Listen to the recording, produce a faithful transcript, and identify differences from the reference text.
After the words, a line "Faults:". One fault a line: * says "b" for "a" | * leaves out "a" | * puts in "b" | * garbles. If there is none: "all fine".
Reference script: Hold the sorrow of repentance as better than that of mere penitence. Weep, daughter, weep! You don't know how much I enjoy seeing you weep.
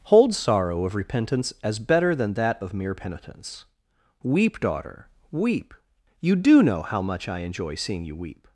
Hold sorrow of repentance as better than that of mere penitence. Weep, daughter, weep! You do know how much I enjoy seeing you weep.
Faults:
* leaves out "the"
* says "do" for "don't"